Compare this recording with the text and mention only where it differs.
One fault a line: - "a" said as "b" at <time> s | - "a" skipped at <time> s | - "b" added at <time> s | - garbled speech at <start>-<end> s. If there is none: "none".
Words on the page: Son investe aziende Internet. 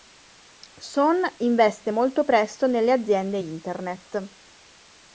- "molto presto nelle" added at 1.9 s